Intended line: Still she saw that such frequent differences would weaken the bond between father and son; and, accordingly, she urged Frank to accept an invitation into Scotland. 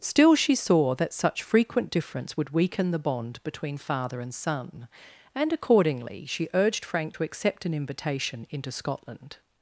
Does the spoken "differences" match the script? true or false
false